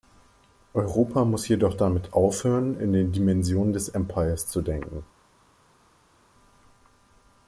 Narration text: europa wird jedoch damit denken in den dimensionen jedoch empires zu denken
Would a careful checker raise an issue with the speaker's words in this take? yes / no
yes